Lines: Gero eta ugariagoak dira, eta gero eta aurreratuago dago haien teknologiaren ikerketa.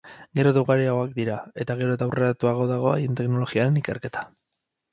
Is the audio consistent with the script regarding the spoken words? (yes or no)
yes